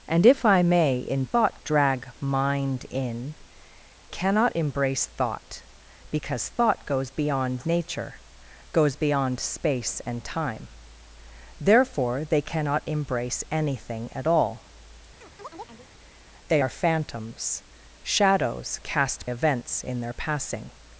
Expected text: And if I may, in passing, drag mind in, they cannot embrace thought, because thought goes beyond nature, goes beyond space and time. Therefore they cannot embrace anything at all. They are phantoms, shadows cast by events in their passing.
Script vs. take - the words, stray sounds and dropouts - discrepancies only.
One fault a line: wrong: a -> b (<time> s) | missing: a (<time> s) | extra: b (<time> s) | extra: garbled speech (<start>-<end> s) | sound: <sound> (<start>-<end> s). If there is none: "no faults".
wrong: passing -> thought (1.2 s)
missing: they (3.3 s)
sound: chirp (15.2-15.9 s)
missing: by (19.2 s)